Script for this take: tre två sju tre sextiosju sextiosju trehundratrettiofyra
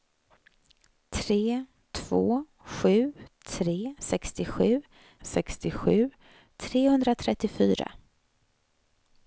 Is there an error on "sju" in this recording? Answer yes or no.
no